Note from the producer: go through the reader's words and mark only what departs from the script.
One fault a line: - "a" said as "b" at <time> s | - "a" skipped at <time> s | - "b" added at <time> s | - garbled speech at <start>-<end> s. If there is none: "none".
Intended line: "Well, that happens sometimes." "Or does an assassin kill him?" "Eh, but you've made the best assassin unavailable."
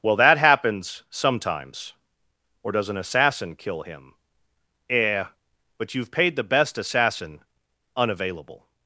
- "made" said as "paid" at 6.1 s